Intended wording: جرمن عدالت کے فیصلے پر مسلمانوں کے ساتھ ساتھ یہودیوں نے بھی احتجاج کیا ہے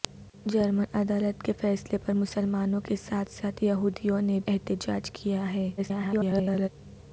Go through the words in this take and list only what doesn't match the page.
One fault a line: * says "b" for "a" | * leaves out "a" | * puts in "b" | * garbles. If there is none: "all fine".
* leaves out "بھی"
* garbles